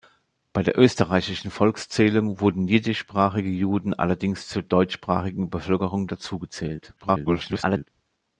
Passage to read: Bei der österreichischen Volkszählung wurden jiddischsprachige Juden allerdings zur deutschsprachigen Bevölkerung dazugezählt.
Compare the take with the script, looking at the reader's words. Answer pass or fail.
fail